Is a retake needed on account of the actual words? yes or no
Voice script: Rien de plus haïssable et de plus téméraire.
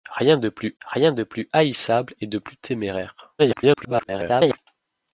yes